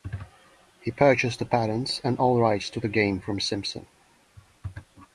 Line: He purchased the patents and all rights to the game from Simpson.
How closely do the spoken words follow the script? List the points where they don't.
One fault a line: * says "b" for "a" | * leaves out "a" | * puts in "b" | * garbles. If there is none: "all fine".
all fine